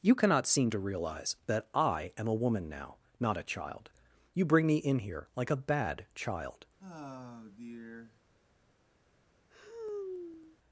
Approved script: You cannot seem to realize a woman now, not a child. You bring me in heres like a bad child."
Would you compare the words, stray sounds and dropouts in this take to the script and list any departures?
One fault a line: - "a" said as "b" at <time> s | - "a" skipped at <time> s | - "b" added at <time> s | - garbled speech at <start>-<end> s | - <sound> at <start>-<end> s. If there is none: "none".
- "that I am" added at 1.4 s
- "heres" said as "here" at 5.0 s
- sigh at 6.8-8.2 s
- sigh at 9.5-10.6 s